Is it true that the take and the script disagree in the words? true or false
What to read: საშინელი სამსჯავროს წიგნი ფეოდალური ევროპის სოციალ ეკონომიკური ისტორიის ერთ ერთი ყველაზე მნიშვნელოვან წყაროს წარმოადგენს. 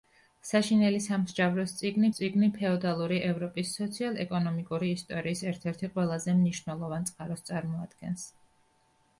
true